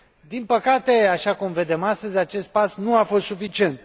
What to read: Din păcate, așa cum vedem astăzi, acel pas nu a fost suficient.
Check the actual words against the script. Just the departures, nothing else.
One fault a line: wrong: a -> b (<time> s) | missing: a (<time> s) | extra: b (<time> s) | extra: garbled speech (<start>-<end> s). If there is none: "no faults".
wrong: acel -> acest (2.2 s)